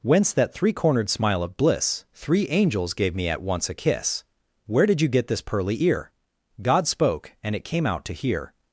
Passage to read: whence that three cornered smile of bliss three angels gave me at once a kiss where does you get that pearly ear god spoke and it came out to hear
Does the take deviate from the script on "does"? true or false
true